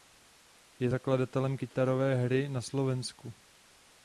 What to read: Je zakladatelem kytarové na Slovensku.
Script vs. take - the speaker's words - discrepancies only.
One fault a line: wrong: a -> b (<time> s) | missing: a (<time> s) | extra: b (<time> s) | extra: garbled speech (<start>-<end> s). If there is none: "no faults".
extra: hry (2.2 s)